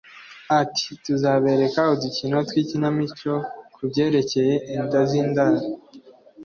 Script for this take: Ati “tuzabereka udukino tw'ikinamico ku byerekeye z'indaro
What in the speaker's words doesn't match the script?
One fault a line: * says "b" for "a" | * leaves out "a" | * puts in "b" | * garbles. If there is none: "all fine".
* puts in "inda"